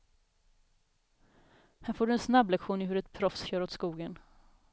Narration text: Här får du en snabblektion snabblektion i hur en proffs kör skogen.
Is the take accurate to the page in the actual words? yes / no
no